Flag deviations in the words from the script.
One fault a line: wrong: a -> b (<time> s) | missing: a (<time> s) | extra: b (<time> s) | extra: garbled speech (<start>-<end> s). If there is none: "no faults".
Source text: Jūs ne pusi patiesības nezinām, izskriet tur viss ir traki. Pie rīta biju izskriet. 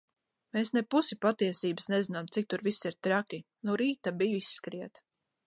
wrong: Jūs -> Mēs (0.6 s)
wrong: izskriet -> cik (2.4 s)
wrong: Pie -> No (3.7 s)